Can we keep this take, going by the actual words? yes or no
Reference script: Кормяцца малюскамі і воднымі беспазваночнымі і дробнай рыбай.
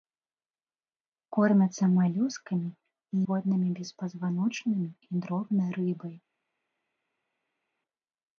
yes